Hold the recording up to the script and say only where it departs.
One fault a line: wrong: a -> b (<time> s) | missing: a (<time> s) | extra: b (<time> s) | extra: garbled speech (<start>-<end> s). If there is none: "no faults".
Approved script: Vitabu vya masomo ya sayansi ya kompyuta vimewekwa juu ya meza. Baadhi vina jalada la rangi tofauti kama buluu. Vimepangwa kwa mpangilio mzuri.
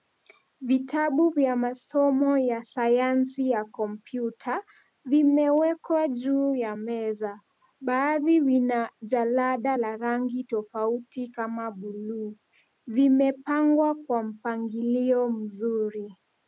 no faults